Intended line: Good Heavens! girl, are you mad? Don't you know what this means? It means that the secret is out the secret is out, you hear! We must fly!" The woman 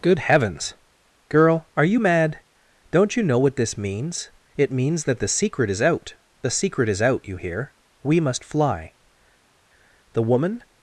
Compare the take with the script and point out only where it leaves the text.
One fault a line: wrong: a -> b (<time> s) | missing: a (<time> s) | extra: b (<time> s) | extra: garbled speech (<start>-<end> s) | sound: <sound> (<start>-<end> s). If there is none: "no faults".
no faults